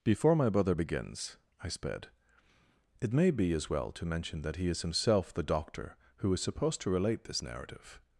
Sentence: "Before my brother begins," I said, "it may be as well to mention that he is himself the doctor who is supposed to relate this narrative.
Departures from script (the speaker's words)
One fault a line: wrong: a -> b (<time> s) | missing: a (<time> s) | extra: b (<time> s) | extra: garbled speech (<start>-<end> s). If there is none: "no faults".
wrong: said -> sped (1.7 s)